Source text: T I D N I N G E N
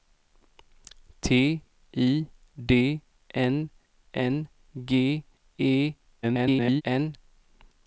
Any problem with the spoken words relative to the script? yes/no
yes